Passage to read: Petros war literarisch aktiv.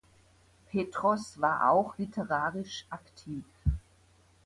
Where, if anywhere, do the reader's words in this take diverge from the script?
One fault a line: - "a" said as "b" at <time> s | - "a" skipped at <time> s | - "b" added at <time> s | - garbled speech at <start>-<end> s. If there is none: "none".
- "auch" added at 1.7 s